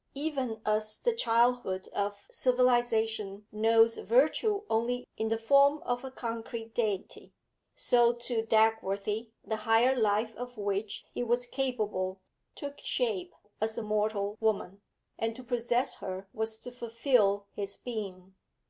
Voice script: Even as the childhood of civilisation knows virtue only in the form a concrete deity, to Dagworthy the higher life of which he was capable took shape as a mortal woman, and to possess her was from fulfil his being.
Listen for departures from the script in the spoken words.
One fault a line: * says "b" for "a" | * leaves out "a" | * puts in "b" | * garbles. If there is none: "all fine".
* puts in "of"
* puts in "so"
* says "to" for "from"